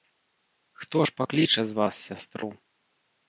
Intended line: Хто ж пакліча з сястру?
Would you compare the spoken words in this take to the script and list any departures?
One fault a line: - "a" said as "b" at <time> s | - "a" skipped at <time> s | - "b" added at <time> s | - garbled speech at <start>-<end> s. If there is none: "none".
- "вас" added at 1.7 s